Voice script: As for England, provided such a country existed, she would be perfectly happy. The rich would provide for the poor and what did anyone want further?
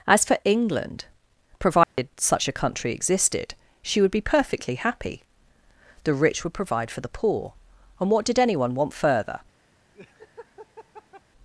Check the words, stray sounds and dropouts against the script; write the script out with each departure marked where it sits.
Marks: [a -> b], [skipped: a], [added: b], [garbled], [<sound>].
As for England, provided [dropout] such a country existed, she would be perfectly happy. The rich would provide for the poor and what did anyone want further? [laugh]